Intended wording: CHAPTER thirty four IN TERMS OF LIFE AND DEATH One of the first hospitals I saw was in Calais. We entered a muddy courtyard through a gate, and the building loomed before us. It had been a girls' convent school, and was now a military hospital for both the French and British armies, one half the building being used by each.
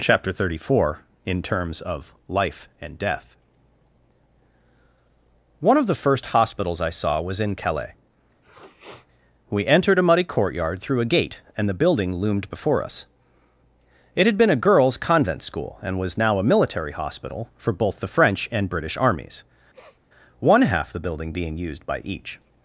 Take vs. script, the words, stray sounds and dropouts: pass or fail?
fail